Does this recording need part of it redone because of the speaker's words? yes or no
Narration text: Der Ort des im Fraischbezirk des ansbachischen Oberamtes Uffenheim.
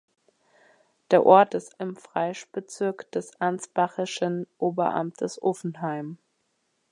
no